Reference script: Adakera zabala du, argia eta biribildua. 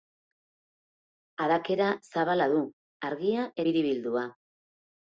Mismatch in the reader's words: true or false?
true